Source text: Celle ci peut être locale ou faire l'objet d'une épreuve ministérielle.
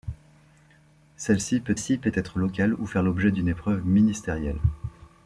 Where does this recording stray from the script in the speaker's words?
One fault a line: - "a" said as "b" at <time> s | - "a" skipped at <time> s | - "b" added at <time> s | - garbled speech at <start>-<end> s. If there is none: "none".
- "ci peut" added at 1.8 s